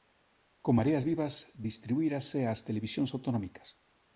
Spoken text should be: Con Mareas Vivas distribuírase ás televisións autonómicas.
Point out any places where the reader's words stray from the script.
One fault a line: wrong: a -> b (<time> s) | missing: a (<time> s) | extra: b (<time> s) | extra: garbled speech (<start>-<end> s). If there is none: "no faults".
no faults